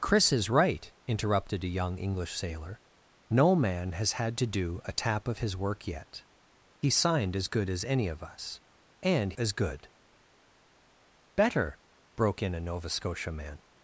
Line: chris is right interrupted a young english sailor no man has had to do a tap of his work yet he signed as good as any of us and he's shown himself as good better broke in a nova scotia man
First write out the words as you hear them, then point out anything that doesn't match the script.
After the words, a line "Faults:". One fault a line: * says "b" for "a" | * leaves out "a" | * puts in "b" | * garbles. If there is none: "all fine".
chris is right interrupted a young english sailor no man has had to do a tap of his work yet he signed as good as any of us and as good better broke in a nova scotia man
Faults:
* leaves out "he's shown himself"